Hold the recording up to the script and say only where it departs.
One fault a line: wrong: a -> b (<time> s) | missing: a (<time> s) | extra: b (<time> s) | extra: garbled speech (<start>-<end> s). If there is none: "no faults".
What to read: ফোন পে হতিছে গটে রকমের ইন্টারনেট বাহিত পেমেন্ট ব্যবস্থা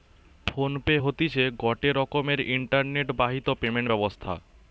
no faults